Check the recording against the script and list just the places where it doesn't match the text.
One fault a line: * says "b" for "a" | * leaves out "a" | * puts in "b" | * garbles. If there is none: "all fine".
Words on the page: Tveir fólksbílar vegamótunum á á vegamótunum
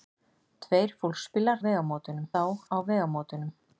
all fine